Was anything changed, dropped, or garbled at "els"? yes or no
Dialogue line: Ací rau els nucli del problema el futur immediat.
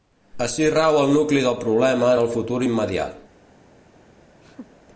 yes